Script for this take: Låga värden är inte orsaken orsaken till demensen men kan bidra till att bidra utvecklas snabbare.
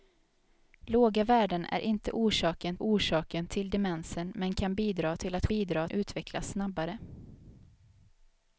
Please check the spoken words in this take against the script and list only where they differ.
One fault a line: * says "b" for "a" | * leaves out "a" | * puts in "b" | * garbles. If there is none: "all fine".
all fine